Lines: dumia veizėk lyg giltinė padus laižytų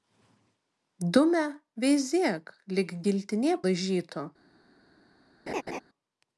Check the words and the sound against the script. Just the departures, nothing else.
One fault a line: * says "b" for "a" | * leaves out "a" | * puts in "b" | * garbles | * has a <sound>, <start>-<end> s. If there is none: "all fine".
* leaves out "padus"
* has a laugh, 5.5-5.8 s